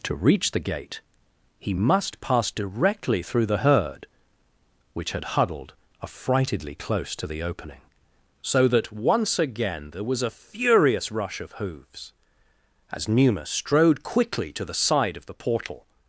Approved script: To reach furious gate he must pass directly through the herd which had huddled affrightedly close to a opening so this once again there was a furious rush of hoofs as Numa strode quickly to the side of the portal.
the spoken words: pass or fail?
fail